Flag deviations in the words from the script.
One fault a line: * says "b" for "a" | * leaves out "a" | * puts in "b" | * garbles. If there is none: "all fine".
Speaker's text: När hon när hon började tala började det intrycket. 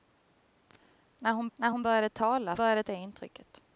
all fine